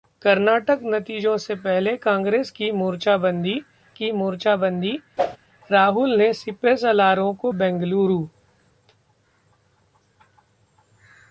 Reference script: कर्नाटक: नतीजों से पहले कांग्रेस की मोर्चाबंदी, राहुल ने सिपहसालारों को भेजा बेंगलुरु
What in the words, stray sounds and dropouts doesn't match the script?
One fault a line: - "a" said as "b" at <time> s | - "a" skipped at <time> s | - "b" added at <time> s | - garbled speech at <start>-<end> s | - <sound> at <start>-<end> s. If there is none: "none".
- "की मोर्चाबंदी" added at 3.9 s
- whoosh at 5.2-5.4 s
- "भेजा" skipped at 7.5 s